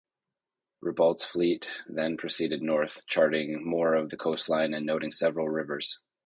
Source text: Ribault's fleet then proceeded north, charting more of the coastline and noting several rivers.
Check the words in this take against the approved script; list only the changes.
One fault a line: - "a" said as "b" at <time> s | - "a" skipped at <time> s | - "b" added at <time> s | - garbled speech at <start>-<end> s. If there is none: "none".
none